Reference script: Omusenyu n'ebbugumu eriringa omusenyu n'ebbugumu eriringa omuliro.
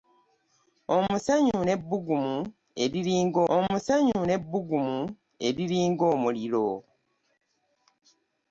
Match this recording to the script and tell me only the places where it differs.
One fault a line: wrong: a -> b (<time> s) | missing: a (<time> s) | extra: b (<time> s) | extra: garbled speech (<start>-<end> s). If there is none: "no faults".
no faults